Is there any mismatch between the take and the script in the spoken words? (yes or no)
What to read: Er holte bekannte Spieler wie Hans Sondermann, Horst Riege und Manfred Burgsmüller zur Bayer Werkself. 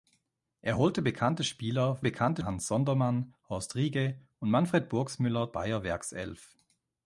yes